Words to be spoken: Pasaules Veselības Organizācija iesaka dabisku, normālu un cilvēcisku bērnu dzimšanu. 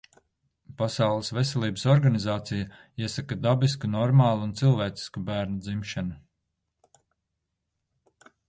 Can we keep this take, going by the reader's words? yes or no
yes